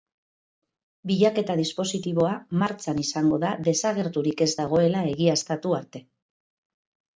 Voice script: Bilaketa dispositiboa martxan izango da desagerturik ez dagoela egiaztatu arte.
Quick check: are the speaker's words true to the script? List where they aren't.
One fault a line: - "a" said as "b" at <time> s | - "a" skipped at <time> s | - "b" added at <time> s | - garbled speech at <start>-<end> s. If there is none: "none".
none